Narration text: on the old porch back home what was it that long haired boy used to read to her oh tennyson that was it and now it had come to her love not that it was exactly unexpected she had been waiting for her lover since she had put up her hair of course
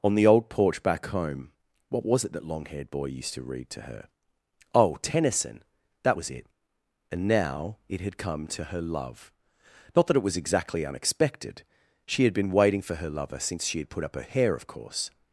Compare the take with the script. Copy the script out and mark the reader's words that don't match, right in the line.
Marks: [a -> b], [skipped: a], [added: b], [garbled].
on the old porch back home what was it that long haired boy used to read to her oh tennyson that was it and now it had come to her love not that it was exactly unexpected she had been waiting for her lover since she had put up her hair of course